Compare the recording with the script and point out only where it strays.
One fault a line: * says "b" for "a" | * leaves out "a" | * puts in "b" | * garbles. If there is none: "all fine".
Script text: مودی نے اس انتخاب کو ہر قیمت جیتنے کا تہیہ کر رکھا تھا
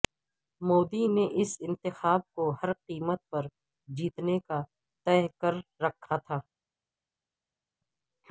* puts in "پر"